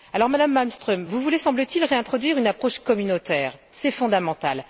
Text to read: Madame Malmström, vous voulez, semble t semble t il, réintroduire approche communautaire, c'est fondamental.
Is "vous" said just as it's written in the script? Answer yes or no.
yes